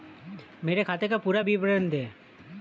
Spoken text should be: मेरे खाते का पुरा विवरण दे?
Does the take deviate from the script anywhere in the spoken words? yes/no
no